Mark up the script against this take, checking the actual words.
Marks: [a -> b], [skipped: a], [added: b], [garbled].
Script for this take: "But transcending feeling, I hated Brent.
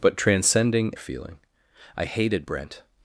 "But transcending feeling, I hated Brent.